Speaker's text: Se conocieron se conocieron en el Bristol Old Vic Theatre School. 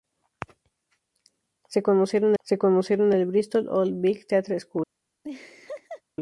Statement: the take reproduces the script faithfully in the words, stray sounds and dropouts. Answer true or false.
false